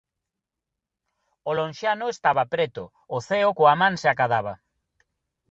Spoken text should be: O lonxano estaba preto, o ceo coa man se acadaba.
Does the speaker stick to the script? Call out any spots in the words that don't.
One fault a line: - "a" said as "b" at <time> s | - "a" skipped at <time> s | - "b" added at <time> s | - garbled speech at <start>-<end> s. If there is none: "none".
none